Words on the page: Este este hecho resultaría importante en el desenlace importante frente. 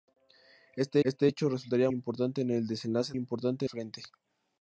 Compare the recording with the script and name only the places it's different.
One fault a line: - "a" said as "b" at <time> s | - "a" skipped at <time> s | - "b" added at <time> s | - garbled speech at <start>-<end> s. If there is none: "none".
none